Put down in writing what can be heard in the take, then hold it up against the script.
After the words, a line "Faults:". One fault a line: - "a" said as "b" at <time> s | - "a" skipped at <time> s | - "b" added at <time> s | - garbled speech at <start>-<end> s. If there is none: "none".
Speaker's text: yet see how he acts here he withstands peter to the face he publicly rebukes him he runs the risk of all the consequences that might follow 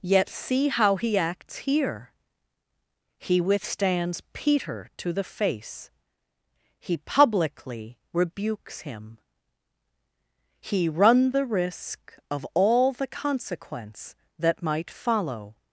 yet see how he acts here he withstands peter to the face he publicly rebukes him he run the risk of all the consequence that might follow
Faults:
- "runs" said as "run" at 10.9 s
- "consequences" said as "consequence" at 13.1 s